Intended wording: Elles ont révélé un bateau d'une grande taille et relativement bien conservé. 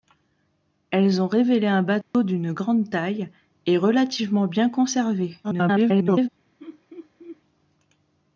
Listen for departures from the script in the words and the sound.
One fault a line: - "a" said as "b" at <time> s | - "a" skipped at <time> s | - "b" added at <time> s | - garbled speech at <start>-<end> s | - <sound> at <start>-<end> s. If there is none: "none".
- dropout at 2.0-2.1 s
- garbled speech at 5.4-6.3 s
- laugh at 6.6-7.4 s